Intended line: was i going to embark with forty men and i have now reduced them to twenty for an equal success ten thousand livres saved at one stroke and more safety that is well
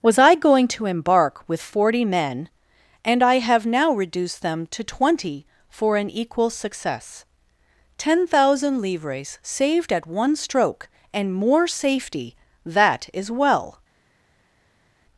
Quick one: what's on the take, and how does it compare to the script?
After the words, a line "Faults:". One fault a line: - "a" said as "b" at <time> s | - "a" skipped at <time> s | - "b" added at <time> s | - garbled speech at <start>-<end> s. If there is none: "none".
was i going to embark with forty men and i have now reduced them to twenty for an equal success ten thousand livres saved at one stroke and more safety that is well
Faults:
none